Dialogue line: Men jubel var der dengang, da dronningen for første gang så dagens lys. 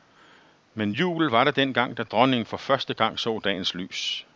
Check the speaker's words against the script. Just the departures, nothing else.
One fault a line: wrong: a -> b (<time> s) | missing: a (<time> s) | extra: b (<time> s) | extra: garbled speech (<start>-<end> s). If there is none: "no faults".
no faults